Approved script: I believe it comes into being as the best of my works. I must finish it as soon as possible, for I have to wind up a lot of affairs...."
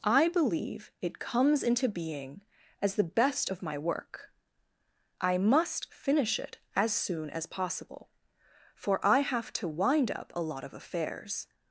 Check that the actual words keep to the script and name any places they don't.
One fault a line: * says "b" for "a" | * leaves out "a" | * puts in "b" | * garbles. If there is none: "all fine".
* says "work" for "works"